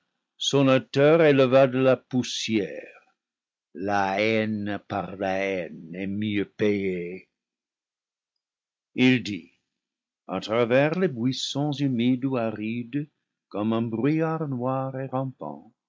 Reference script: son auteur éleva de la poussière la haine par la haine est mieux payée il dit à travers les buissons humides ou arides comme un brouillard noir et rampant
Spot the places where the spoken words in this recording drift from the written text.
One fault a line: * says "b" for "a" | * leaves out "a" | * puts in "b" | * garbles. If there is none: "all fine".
all fine